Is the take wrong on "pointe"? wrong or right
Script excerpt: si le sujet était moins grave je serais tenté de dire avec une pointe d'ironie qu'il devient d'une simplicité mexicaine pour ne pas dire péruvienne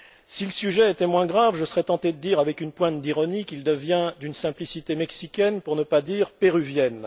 right